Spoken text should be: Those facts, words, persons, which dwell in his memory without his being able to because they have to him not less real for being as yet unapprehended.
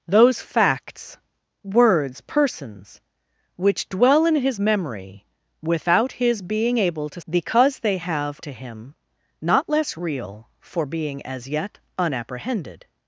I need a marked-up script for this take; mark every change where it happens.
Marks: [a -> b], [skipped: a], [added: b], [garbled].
Those facts, words, persons, which dwell in his memory without his being able to because they have to him not less real for being as yet unapprehended.